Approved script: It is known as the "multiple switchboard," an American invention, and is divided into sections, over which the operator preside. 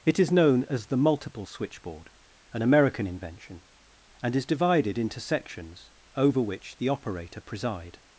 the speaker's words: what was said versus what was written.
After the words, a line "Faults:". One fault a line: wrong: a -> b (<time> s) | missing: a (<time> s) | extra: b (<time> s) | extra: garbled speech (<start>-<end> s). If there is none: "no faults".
It is known as the "multiple switchboard," an American invention, and is divided into sections, over which the operator preside.
Faults:
no faults